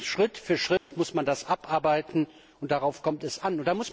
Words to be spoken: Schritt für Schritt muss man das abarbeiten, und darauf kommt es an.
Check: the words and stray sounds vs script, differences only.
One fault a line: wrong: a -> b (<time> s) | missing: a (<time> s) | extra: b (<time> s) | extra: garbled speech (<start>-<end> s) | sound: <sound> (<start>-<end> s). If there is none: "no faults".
sound: dropout (0.8-0.9 s)